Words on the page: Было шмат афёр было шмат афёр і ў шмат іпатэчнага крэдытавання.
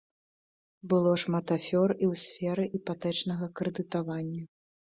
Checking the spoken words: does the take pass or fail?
fail